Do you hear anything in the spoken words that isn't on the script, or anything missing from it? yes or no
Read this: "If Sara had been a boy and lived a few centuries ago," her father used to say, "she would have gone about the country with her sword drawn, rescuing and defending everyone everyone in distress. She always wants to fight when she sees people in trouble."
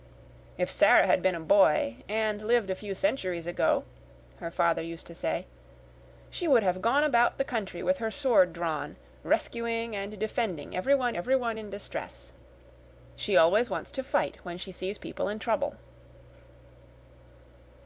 no